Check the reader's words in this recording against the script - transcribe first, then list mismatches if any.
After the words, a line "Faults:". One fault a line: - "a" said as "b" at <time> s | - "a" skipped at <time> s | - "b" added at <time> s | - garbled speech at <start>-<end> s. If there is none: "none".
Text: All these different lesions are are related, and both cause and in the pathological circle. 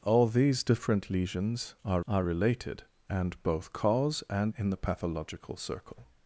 All these different lesions are are related, and both cause and in the pathological circle.
Faults:
none